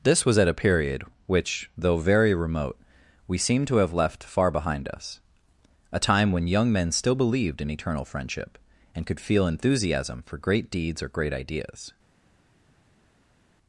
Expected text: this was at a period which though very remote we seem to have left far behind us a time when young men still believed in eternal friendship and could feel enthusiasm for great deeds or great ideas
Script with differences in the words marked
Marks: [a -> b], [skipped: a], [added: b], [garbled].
this was at a period which though very remote we seem to have left far behind us a time when young men still believed in eternal friendship and could feel enthusiasm for great deeds or great ideas